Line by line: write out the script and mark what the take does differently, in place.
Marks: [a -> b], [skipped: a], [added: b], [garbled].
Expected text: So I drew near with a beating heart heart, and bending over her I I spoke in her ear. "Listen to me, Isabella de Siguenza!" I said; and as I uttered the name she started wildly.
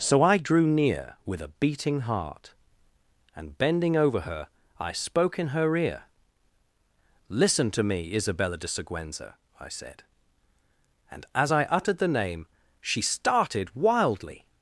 So I drew near with a beating heart [skipped: heart,] and bending over her I [skipped: I] spoke in her ear. "Listen to me, Isabella de Siguenza!" I said; and as I uttered the name she started wildly.